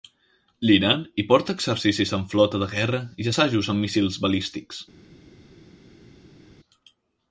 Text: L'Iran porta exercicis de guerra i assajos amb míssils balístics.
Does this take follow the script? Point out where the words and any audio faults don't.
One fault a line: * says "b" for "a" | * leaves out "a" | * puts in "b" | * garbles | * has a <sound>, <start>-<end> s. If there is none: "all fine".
* puts in "hi"
* puts in "amb flota"